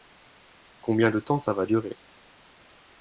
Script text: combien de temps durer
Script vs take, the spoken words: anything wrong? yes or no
yes